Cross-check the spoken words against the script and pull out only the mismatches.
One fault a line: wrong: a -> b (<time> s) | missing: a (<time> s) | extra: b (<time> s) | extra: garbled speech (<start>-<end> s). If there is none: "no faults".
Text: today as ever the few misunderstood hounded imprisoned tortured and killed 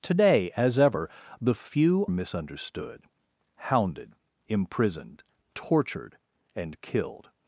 no faults